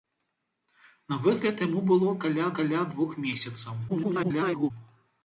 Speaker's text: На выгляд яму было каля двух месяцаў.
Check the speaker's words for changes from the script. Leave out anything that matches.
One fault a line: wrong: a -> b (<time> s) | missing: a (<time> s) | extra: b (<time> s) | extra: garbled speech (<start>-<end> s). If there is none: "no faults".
extra: каля (2.6 s)
extra: garbled speech (3.9-4.7 s)